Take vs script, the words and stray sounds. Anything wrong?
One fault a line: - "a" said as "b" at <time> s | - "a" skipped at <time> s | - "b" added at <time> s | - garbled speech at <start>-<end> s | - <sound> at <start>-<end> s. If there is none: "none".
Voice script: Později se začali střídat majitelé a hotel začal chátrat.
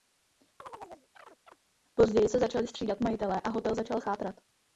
- chirp at 0.6-1.6 s